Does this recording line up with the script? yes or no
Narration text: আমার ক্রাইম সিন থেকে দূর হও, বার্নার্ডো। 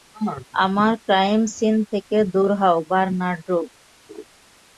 yes